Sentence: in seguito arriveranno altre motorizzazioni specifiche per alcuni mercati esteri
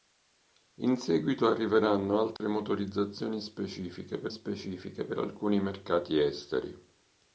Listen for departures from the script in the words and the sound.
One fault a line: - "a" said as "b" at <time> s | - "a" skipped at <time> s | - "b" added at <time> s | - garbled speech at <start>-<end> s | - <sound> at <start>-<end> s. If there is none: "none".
- dropout at 2.4-2.4 s
- "specifiche per" added at 4.3 s